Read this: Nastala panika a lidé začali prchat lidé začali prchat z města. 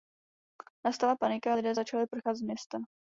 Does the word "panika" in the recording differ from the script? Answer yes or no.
no